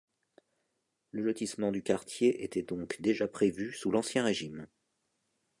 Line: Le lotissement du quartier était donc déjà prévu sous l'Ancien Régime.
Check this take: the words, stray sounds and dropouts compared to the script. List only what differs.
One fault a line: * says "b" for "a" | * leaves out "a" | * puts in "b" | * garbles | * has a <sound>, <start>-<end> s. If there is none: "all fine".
all fine